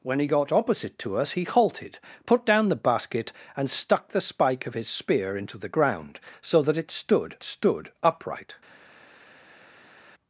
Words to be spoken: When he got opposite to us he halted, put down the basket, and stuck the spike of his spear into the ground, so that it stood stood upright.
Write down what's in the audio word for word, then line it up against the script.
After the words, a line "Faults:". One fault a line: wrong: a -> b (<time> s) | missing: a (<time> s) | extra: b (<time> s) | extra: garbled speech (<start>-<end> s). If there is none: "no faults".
When he got opposite to us he halted, put down the basket, and stuck the spike of his spear into the ground, so that it stood stood upright.
Faults:
no faults